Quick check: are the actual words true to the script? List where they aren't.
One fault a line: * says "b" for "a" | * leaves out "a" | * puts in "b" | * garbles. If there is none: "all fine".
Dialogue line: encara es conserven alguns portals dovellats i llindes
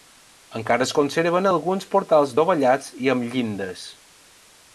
* puts in "amb"